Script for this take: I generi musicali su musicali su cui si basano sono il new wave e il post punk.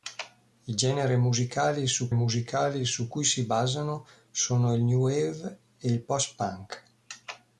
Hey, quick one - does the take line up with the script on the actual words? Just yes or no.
yes